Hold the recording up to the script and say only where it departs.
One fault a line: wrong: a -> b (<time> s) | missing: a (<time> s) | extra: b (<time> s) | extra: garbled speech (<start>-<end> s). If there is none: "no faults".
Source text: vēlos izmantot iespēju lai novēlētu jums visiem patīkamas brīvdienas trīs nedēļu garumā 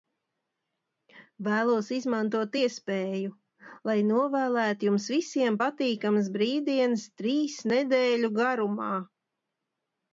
no faults